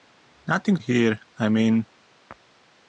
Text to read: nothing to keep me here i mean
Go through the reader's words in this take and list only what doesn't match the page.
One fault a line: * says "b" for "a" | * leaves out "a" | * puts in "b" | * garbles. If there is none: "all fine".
* leaves out "to keep me"